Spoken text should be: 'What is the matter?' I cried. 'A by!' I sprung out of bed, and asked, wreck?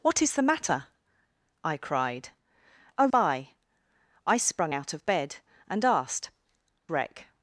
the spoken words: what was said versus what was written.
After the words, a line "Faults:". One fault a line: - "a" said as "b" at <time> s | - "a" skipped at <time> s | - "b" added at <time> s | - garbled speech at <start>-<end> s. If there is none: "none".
'What is the matter?' I cried. 'A by!' I sprung out of bed, and asked, wreck?
Faults:
none